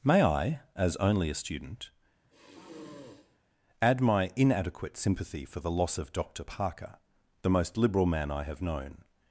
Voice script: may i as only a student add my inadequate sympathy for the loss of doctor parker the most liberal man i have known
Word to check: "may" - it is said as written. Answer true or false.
true